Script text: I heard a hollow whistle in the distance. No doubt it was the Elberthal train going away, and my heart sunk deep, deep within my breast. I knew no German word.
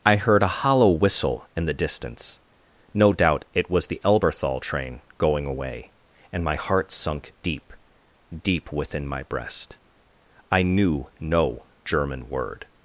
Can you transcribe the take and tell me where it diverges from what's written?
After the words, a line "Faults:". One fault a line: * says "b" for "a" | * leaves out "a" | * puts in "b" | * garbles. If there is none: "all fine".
I heard a hollow whistle in the distance. No doubt it was the Elberthal train going away, and my heart sunk deep, deep within my breast. I knew no German word.
Faults:
all fine